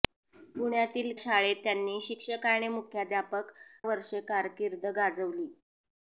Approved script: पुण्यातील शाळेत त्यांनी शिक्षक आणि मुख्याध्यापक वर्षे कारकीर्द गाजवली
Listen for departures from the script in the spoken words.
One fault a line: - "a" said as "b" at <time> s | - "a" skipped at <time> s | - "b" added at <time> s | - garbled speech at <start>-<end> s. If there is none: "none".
none